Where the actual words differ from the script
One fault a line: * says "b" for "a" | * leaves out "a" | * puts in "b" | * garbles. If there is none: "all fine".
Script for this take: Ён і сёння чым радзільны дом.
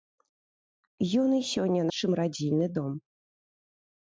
all fine